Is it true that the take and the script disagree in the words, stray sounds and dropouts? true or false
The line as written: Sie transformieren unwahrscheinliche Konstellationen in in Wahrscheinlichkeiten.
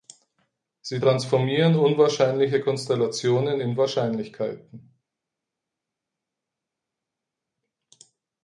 true